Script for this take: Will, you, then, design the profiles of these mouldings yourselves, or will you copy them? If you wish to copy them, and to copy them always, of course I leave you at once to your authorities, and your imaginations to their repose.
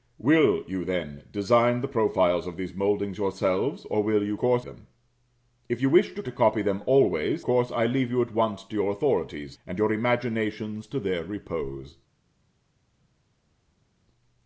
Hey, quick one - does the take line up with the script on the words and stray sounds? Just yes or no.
no